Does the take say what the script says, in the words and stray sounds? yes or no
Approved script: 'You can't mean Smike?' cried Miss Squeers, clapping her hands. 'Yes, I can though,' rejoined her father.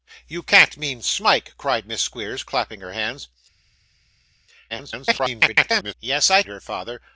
no